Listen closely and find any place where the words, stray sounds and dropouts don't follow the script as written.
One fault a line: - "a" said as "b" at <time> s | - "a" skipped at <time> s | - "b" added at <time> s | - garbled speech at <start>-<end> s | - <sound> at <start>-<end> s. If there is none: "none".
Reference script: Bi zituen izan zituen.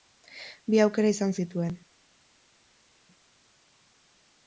- "zituen" said as "aukera" at 0.8 s